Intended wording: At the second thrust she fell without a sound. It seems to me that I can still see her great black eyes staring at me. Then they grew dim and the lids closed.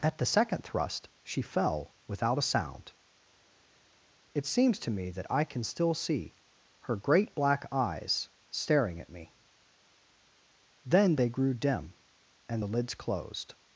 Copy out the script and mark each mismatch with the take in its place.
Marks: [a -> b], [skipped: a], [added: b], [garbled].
At the second thrust she fell without a sound. It seems to me that I can still see her great black eyes staring at me. Then they grew dim and the lids closed.